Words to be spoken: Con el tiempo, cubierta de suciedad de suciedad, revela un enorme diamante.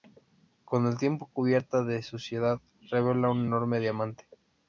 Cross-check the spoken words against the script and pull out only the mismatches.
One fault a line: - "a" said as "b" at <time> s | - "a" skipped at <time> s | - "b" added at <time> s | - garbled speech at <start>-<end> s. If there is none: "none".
- "de suciedad" skipped at 2.6 s